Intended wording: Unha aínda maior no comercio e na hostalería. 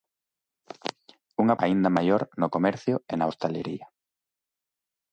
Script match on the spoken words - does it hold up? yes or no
yes